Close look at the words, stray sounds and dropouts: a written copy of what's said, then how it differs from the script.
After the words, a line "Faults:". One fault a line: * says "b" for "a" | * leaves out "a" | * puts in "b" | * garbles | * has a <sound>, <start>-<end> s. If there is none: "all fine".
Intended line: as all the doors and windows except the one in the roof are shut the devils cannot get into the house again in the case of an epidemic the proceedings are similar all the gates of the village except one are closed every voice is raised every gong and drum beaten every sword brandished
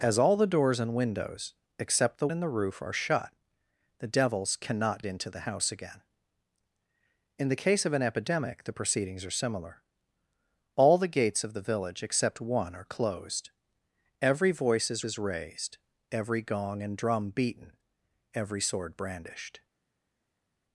as all the doors and windows except the in the roof are shut the devils cannot into the house again in the case of an epidemic the proceedings are similar all the gates of the village except one are closed every voice is is raised every gong and drum beaten every sword brandished
Faults:
* leaves out "one"
* leaves out "get"
* puts in "is"